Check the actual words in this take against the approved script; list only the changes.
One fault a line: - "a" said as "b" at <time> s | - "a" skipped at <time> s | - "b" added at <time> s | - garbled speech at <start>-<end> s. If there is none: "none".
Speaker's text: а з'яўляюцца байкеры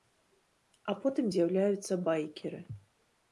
- "потым" added at 1.0 s